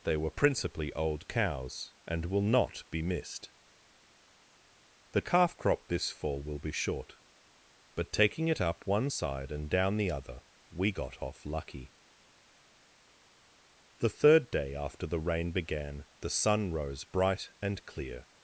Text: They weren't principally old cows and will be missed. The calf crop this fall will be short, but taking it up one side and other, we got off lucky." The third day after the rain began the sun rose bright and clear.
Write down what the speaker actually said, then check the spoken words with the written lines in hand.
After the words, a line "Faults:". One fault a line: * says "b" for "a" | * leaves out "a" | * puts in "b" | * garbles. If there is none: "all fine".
They were principally old cows and will not be missed. The calf crop this fall will be short, but taking it up one side and down the other, we got off lucky." The third day after the rain began the sun rose bright and clear.
Faults:
* says "were" for "weren't"
* puts in "not"
* puts in "down the"